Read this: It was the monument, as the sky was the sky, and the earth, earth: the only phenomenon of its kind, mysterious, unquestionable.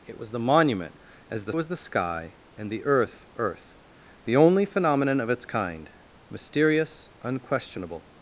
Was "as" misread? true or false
false